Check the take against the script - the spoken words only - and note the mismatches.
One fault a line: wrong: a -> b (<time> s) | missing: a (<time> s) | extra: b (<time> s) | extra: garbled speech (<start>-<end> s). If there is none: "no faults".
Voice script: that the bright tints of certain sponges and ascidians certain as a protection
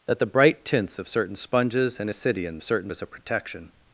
no faults